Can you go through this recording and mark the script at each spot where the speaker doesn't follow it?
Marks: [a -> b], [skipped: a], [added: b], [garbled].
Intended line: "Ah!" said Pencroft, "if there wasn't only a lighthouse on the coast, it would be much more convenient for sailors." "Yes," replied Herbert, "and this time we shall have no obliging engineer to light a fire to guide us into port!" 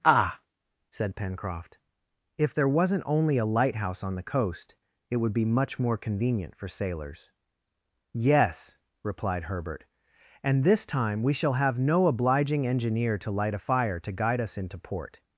"Ah!" said Pencroft, "if there wasn't only a lighthouse on the coast, it would be much more convenient for sailors." "Yes," replied Herbert, "and this time we shall have no obliging engineer to light a fire to guide us into port!"